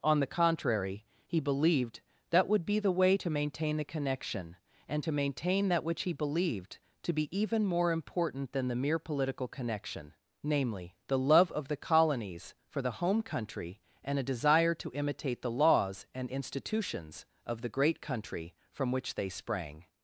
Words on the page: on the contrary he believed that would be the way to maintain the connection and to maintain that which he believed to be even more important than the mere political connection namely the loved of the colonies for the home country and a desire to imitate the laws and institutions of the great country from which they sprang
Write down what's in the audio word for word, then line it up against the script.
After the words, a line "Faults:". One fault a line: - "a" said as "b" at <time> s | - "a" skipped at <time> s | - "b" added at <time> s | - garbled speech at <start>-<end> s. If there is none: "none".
on the contrary he believed that would be the way to maintain the connection and to maintain that which he believed to be even more important than the mere political connection namely the love of the colonies for the home country and a desire to imitate the laws and institutions of the great country from which they sprang
Faults:
- "loved" said as "love" at 11.2 s